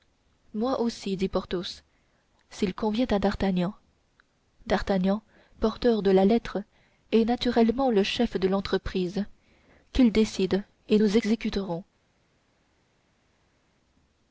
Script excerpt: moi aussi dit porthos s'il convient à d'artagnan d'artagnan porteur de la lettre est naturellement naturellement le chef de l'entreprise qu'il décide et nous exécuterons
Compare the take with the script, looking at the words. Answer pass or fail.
fail